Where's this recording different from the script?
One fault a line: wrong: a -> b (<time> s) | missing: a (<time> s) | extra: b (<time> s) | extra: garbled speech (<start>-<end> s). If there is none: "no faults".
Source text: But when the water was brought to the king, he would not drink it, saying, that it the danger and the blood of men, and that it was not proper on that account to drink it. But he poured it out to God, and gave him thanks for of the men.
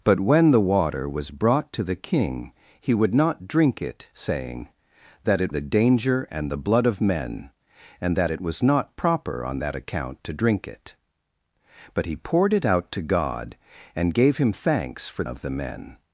no faults